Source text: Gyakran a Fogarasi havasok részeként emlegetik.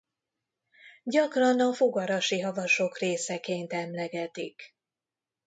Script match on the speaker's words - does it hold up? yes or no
yes